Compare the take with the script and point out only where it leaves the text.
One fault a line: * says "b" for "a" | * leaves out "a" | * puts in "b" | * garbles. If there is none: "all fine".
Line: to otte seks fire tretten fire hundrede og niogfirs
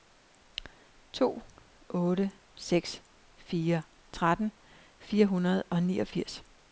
all fine